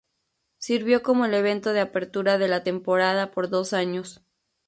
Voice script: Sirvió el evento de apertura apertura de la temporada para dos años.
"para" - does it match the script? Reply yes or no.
no